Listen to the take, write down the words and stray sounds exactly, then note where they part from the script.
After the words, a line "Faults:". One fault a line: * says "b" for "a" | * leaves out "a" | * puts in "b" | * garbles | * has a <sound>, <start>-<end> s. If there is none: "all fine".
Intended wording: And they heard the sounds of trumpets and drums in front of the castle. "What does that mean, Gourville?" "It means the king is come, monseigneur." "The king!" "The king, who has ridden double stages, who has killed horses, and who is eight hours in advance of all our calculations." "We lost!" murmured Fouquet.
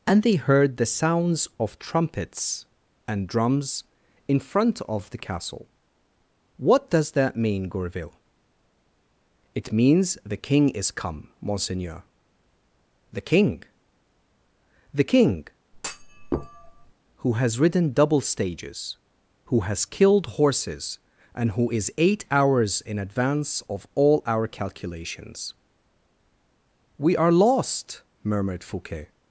And they heard the sounds of trumpets and drums in front of the castle. "What does that mean, Gourville?" "It means the king is come, monseigneur." "The king!" "The king, who has ridden double stages, who has killed horses, and who is eight hours in advance of all our calculations." "We are lost!" murmured Fouquet.
Faults:
* has a thud, 15.7-16.9 s
* puts in "are"